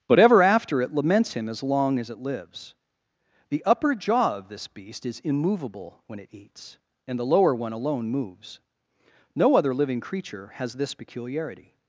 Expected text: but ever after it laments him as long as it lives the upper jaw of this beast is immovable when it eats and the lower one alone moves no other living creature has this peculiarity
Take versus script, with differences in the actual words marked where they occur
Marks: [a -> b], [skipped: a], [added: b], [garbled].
but ever after it laments him as long as it lives the upper jaw of this beast is immovable when it eats and the lower one alone moves no other living creature has this peculiarity